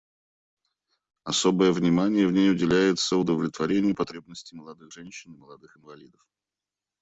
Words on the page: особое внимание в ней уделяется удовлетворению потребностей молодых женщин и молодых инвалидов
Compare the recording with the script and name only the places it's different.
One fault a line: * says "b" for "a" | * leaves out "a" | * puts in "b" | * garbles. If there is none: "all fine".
all fine